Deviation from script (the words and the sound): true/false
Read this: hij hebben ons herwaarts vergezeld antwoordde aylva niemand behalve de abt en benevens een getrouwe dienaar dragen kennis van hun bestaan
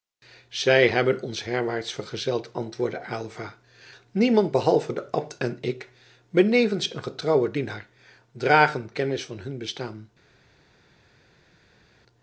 true